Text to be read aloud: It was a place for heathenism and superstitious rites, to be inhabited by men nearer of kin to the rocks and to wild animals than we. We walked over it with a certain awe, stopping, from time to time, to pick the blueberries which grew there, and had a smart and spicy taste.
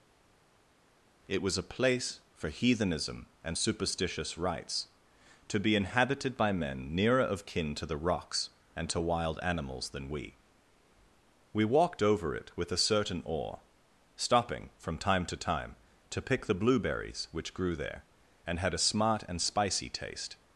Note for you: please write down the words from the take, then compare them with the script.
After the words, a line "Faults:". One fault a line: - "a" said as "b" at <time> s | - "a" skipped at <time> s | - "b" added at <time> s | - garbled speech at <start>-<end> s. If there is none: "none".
It was a place for heathenism and superstitious rites, to be inhabited by men nearer of kin to the rocks and to wild animals than we. We walked over it with a certain awe, stopping, from time to time, to pick the blueberries which grew there, and had a smart and spicy taste.
Faults:
none